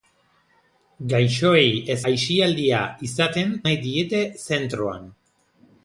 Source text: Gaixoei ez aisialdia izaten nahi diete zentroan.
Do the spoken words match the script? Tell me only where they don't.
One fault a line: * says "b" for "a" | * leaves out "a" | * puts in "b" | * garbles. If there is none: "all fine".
all fine